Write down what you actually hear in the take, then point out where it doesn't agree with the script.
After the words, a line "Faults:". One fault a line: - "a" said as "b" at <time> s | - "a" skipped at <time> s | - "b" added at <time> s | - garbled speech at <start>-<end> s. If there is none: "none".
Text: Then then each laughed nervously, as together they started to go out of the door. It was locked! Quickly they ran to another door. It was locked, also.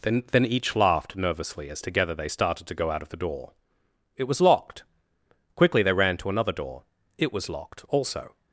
Then then each laughed nervously, as together they started to go out of the door. It was locked! Quickly they ran to another door. It was locked, also.
Faults:
none